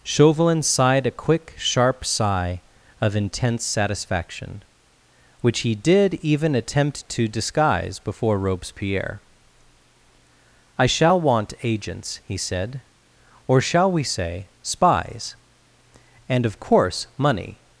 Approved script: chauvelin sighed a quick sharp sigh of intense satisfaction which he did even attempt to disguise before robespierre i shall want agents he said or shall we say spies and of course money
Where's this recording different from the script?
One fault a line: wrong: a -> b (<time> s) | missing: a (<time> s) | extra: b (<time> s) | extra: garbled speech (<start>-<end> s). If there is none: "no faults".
no faults